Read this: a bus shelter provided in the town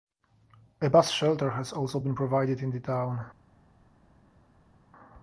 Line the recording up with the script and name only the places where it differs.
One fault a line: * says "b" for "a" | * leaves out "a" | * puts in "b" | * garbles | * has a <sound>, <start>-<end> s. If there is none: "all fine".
* puts in "has also been"